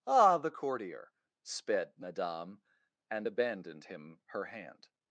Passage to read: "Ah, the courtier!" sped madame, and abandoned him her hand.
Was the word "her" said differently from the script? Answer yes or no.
no